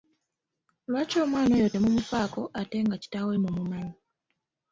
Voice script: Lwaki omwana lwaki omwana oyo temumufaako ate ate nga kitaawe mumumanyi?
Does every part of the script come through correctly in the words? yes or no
no